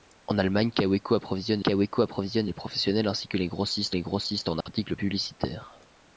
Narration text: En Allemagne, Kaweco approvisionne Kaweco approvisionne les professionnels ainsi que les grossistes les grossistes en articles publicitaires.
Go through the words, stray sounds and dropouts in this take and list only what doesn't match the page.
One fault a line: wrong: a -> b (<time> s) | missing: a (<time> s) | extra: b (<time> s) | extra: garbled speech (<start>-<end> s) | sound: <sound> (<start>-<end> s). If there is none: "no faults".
sound: dropout (4.6-4.7 s)